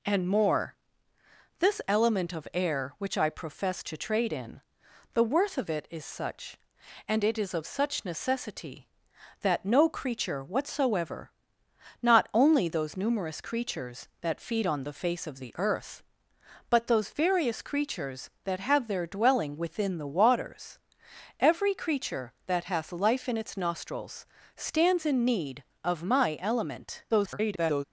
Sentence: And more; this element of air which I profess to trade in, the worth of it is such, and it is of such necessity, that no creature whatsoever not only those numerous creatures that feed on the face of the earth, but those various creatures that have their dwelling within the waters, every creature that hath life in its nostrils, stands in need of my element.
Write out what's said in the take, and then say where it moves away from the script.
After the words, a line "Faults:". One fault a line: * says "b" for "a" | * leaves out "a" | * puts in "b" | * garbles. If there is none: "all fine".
And more; this element of air which I profess to trade in, the worth of it is such, and it is of such necessity, that no creature whatsoever not only those numerous creatures that feed on the face of the earth, but those various creatures that have their dwelling within the waters, every creature that hath life in its nostrils, stands in need of my element. [garbled]
Faults:
* garbles